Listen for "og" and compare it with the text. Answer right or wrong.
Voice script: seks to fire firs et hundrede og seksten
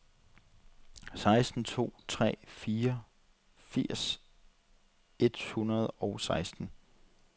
right